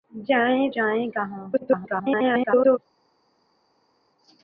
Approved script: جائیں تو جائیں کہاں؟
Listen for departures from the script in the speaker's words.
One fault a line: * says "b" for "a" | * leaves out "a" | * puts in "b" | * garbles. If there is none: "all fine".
* leaves out "تو"
* garbles